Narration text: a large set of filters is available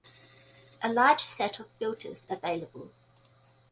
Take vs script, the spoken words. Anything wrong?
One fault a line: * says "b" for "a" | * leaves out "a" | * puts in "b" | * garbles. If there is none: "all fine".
* leaves out "is"